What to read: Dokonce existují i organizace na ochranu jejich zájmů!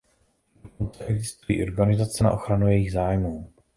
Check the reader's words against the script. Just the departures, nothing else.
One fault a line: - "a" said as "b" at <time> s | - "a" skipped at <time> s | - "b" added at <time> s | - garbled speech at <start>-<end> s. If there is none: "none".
none